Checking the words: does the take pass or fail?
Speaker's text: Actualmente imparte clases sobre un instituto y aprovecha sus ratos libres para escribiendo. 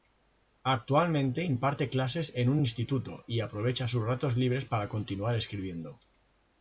fail